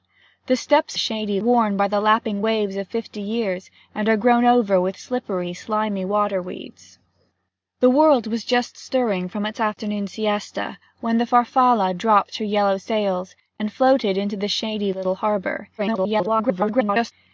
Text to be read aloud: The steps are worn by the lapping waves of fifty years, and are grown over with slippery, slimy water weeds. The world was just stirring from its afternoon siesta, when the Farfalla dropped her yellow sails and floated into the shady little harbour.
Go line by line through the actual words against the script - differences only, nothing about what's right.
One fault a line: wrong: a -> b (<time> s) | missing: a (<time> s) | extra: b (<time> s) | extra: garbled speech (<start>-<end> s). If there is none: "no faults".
wrong: are -> shady (1.0 s)
extra: garbled speech (15.8-17.1 s)